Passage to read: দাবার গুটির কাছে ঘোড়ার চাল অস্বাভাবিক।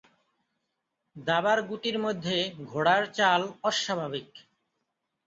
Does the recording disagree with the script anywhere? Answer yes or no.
yes